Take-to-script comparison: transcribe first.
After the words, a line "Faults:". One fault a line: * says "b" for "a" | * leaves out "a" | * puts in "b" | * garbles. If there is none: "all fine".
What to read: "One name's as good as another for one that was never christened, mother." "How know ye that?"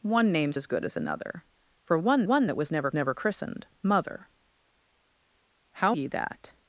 "One name's as good as another for one one that was never never christened, mother." "How ye that?"
Faults:
* puts in "one"
* puts in "never"
* leaves out "know"